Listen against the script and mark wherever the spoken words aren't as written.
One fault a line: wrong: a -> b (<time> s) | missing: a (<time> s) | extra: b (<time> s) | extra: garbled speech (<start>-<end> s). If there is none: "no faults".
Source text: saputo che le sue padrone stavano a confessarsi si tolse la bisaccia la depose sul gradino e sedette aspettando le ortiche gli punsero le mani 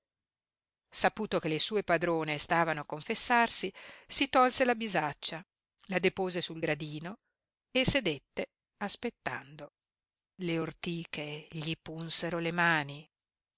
no faults